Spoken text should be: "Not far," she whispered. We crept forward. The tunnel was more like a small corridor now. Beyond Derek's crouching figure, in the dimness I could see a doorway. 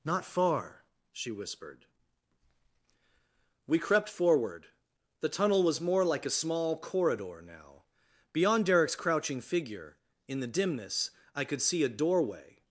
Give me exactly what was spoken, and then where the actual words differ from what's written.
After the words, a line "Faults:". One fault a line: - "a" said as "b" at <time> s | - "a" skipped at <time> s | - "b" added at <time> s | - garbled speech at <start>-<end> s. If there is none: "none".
"Not far," she whispered. We crept forward. The tunnel was more like a small corridor now. Beyond Derek's crouching figure, in the dimness I could see a doorway.
Faults:
none